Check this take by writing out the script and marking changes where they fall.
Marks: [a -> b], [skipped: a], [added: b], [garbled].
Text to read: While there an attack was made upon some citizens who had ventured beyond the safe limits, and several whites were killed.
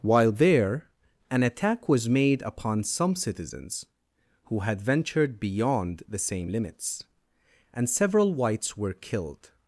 While there an attack was made upon some citizens who had ventured beyond the [safe -> same] limits, and several whites were killed.